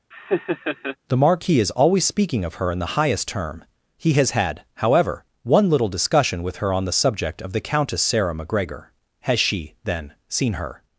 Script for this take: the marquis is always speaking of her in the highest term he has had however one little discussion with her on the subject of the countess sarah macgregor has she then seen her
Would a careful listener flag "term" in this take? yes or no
no